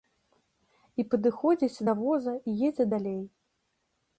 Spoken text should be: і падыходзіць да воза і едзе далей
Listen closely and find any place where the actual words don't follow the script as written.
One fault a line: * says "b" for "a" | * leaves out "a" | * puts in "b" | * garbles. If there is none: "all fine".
all fine